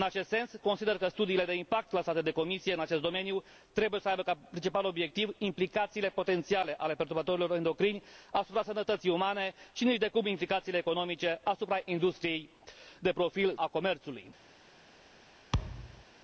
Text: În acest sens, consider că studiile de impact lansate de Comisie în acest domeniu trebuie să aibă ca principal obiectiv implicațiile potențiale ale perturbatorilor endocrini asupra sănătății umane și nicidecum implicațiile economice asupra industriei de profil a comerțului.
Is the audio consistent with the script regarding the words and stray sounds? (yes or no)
no